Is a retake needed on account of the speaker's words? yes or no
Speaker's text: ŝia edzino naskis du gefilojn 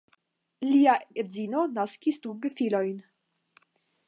yes